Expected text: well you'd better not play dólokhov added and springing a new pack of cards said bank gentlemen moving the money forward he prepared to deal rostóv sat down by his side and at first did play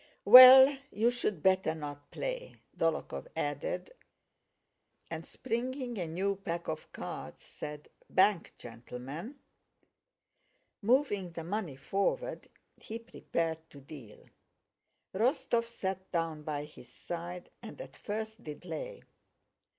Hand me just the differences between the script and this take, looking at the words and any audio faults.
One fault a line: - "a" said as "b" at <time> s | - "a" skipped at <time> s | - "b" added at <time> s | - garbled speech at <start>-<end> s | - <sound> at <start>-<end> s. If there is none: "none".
none